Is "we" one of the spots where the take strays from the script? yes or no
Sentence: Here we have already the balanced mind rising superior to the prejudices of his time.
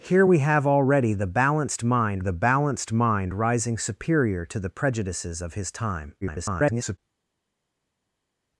no